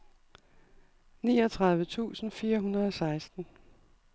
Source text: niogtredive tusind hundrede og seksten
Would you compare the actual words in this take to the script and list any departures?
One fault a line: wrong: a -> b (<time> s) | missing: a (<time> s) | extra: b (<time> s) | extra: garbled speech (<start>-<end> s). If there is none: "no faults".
extra: fire (2.3 s)